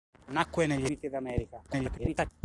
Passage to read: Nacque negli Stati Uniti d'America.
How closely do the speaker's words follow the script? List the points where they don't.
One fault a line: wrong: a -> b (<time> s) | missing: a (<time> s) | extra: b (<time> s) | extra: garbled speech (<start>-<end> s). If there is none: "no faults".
missing: Stati (0.9 s)
extra: garbled speech (1.7-2.3 s)